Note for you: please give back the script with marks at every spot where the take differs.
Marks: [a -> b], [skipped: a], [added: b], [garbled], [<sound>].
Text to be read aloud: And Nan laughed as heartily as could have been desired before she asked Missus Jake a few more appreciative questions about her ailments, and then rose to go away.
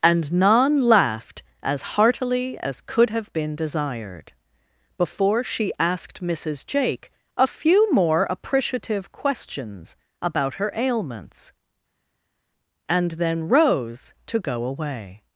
And Nan laughed as heartily as could have been desired before she asked Missus Jake a few more appreciative questions about her ailments, and then rose to go away.